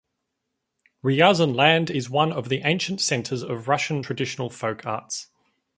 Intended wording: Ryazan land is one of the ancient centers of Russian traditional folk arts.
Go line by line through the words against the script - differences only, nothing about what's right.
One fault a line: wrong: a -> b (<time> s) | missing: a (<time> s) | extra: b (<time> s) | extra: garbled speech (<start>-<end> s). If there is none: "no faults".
no faults